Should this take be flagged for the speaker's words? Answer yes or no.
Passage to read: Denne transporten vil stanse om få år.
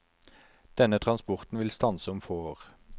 no